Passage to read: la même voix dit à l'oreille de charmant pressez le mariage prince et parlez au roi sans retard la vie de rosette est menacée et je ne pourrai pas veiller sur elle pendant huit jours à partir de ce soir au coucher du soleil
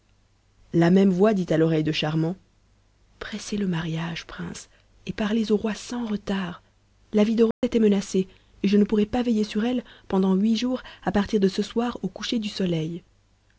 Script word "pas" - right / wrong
right